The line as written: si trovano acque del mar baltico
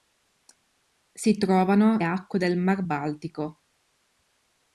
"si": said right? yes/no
yes